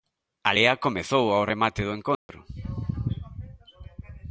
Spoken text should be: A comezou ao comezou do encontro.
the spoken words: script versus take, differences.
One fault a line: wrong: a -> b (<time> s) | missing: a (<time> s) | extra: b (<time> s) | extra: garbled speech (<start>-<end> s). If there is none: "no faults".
extra: lea (0.5 s)
wrong: comezou -> remate (1.5 s)